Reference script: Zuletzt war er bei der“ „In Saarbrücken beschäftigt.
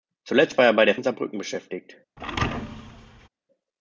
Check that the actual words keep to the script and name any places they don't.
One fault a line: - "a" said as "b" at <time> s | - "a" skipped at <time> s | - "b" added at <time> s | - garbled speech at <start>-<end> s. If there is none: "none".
none